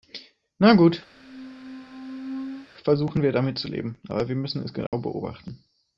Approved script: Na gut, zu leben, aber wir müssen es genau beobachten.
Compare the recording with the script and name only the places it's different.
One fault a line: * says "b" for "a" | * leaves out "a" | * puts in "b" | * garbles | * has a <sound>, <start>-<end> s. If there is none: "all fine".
* has a squeak, 1.1-2.7 s
* puts in "versuchen wir damit"
* has a dropout, 4.9-4.9 s